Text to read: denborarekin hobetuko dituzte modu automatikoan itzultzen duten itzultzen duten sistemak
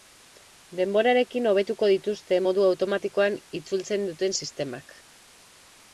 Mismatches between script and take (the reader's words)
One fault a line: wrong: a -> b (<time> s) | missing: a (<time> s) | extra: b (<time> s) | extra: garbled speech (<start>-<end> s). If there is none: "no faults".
missing: itzultzen duten (4.4 s)